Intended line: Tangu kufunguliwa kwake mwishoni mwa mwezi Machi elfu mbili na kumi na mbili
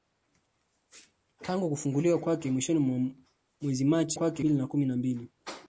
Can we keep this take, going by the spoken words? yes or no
no